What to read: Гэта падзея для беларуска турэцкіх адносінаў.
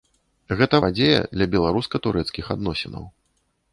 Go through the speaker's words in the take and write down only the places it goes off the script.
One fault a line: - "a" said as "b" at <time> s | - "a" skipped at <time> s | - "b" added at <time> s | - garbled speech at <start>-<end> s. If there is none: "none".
none